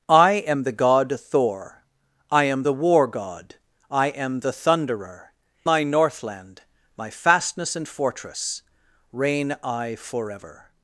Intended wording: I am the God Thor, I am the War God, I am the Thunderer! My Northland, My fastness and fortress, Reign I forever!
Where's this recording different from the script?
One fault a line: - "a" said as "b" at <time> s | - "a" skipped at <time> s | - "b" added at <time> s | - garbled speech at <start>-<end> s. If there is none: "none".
none